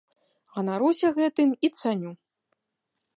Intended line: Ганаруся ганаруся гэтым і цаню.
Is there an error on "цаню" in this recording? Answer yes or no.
no